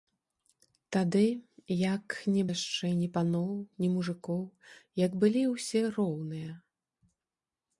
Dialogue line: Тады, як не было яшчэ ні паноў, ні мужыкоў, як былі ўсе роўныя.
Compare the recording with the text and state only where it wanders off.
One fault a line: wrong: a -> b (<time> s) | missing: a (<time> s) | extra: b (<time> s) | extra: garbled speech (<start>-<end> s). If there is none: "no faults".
missing: было (2.4 s)